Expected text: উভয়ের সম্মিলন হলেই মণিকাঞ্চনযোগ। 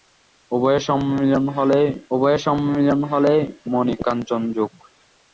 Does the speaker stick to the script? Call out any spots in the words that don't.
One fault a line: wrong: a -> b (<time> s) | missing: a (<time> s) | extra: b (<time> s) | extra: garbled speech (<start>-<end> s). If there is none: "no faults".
extra: উভয়ের সম্মিলন হলেই (2.1 s)